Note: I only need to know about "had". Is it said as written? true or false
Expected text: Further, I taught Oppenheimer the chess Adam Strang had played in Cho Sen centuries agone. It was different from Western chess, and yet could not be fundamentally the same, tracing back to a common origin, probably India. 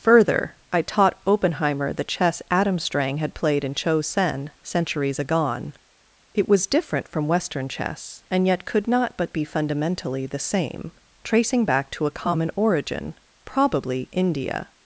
true